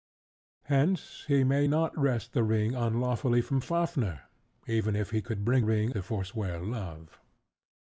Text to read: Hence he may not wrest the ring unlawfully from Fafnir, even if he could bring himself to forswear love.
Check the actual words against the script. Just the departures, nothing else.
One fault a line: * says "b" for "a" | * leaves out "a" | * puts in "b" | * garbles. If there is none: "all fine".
* says "ring" for "himself"